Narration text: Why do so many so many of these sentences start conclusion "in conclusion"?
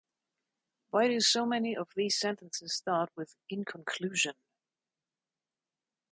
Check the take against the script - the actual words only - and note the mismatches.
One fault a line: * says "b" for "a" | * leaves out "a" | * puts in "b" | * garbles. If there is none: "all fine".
* leaves out "so many"
* says "with" for "conclusion"